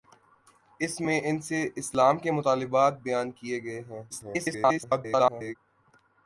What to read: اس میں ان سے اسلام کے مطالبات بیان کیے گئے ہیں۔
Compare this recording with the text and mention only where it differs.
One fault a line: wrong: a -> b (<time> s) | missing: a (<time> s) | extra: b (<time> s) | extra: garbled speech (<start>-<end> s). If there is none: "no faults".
extra: garbled speech (4.1-5.6 s)